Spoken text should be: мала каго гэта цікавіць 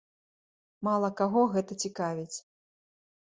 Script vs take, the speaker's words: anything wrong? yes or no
no